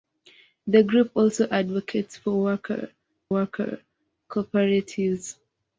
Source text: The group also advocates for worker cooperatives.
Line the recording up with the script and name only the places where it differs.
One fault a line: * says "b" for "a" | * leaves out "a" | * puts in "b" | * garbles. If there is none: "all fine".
* puts in "worker"